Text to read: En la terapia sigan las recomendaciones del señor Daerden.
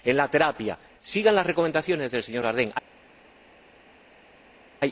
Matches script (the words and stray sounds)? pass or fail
pass